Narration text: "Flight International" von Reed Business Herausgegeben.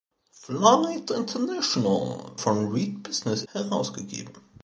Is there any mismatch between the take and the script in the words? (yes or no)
no